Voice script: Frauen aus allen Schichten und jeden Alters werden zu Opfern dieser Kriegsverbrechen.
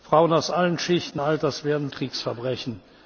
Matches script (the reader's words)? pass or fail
fail